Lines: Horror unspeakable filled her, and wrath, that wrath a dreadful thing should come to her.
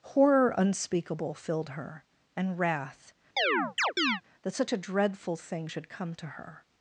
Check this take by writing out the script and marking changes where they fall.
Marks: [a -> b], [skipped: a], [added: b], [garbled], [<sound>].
Horror unspeakable filled her, and wrath, [chirp] that [wrath -> such] a dreadful thing should come to her.